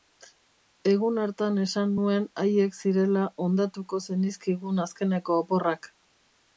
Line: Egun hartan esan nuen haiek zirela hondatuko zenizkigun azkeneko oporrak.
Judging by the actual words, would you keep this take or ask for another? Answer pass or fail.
pass